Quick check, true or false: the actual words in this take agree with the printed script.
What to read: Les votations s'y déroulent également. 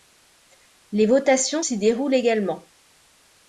true